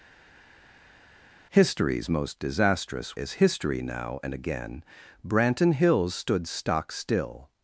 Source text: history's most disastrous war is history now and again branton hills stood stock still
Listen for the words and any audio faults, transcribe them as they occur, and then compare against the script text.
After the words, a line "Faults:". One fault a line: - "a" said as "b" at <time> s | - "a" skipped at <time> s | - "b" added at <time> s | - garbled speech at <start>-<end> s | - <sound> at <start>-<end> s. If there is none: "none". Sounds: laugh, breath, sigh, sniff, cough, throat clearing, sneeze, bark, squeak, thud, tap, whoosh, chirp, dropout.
history's most disastrous is history now and again branton hills stood stock still
Faults:
- "war" skipped at 3.2 s